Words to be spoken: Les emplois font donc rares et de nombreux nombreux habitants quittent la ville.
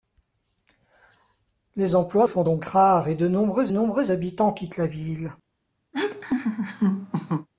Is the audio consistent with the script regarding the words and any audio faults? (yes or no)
no